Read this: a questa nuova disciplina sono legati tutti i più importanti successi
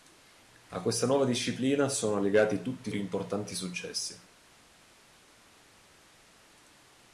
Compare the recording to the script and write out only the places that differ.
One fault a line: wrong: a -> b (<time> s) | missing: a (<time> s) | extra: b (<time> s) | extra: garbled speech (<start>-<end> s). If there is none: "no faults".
no faults